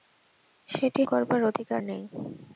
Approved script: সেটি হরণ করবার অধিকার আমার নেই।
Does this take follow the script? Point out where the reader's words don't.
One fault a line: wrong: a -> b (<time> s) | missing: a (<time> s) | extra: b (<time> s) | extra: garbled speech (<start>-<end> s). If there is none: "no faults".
missing: হরণ (1.0 s)
missing: আমার (1.8 s)